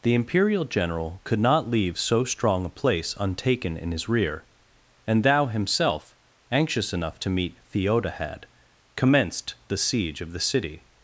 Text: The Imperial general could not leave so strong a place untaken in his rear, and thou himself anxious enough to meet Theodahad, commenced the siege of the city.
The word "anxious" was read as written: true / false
true